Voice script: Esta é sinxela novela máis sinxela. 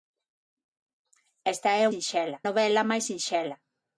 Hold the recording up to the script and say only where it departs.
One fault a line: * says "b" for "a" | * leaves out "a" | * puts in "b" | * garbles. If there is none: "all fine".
all fine